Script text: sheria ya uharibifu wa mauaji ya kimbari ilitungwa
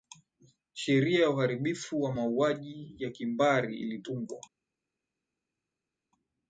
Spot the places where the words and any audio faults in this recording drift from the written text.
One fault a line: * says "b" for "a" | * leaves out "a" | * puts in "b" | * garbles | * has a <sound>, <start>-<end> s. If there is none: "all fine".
all fine